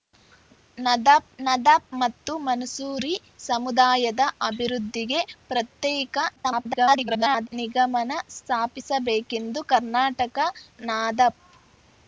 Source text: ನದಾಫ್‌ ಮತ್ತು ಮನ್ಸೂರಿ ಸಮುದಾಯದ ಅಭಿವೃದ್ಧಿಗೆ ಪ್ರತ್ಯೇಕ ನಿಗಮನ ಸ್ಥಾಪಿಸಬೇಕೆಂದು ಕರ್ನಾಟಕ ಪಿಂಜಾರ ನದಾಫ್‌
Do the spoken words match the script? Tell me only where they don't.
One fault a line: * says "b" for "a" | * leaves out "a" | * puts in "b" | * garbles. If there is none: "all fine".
* puts in "ನದಾಫ್"
* garbles
* leaves out "ಪಿಂಜಾರ"